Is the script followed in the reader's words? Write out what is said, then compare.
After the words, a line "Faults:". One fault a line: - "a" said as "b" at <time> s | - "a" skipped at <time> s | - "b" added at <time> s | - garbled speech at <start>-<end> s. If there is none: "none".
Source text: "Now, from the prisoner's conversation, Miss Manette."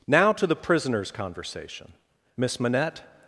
"Now, to the prisoner's conversation, Miss Manette."
Faults:
- "from" said as "to" at 0.3 s